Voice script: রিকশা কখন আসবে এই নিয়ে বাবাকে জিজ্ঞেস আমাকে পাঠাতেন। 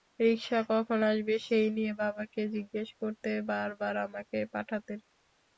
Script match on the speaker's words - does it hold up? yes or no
no